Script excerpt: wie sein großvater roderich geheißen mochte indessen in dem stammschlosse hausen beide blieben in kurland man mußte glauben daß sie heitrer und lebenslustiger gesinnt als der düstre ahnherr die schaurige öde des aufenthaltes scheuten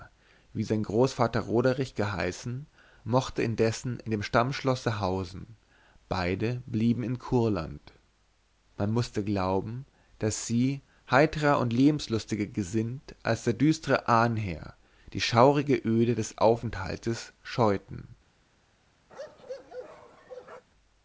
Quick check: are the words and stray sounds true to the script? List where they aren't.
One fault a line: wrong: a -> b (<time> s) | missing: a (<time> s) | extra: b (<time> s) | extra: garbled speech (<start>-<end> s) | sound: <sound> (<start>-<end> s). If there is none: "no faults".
sound: bark (19.1-20.6 s)